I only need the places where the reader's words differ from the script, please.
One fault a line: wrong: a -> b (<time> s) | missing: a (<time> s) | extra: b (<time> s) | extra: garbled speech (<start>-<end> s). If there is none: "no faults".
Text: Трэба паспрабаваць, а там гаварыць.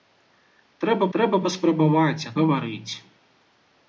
extra: трэба (1.2 s)
missing: там (2.3 s)